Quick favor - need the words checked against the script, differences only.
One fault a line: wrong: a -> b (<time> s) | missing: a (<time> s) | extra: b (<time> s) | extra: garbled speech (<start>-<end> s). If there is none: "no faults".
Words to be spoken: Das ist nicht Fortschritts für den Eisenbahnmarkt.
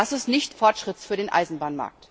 no faults